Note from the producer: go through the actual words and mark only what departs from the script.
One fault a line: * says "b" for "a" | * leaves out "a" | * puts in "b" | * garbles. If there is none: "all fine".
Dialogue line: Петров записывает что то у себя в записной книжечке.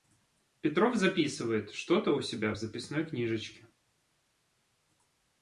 all fine